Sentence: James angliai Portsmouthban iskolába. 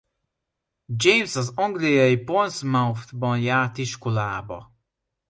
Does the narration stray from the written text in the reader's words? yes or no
yes